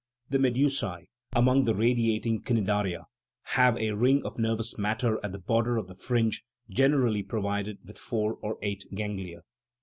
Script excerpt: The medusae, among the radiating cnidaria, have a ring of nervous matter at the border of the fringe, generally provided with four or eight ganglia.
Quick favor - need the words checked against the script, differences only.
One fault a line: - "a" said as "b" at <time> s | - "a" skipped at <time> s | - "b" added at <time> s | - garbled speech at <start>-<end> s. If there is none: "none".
none